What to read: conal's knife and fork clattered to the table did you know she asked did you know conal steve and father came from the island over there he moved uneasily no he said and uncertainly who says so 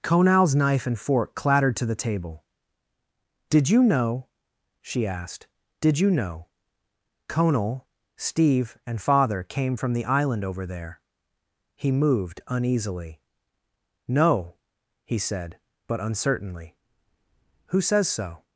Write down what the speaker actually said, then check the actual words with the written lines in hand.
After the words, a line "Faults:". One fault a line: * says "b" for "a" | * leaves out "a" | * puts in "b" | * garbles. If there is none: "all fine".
conal's knife and fork clattered to the table did you know she asked did you know conal steve and father came from the island over there he moved uneasily no he said but uncertainly who says so
Faults:
* says "but" for "and"